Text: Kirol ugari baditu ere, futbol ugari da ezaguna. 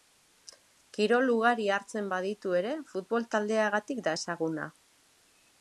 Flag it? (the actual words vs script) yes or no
yes